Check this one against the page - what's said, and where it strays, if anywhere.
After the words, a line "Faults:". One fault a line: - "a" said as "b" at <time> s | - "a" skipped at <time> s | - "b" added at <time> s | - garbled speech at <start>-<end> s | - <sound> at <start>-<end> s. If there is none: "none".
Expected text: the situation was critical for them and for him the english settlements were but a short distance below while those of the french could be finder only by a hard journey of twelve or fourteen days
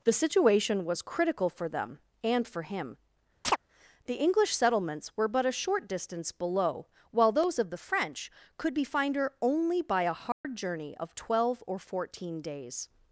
the situation was critical for them and for him the english settlements were but a short distance below while those of the french could be finder only by a hard journey of twelve or fourteen days
Faults:
- chirp at 3.4-3.6 s
- dropout at 10.3-10.4 s